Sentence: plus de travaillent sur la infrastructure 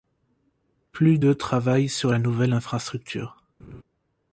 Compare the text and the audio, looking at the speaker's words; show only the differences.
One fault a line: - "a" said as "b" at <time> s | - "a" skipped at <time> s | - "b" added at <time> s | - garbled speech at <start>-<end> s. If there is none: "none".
- "nouvelle" added at 2.2 s